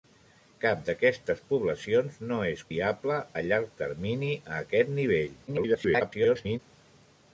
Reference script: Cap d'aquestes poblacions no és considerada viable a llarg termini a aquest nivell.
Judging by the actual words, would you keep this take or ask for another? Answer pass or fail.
fail